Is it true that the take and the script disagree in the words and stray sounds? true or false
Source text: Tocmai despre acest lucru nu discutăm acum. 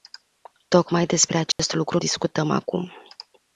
true